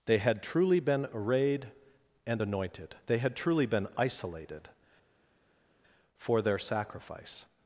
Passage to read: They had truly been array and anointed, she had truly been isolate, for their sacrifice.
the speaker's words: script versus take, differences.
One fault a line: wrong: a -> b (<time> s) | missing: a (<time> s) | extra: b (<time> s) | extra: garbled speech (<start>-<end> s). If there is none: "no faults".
wrong: array -> arrayed (1.1 s)
wrong: she -> they (3.1 s)
wrong: isolate -> isolated (4.0 s)